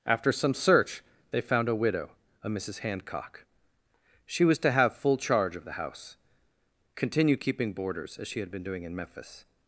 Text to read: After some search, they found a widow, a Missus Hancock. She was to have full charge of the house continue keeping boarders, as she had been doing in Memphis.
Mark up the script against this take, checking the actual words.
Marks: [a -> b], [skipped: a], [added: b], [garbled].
After some search, they found a widow, a Missus Hancock. She was to have full charge of the house continue keeping boarders, as she had been doing in Memphis.